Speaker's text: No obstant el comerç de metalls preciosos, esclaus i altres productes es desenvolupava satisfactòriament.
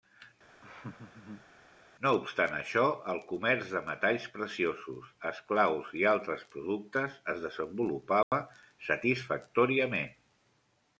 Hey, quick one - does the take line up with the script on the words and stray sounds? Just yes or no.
no